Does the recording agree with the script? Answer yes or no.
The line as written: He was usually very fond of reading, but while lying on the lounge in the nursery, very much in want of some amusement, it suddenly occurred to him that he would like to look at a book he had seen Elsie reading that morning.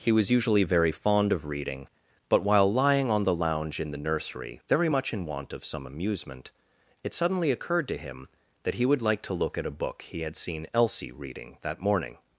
yes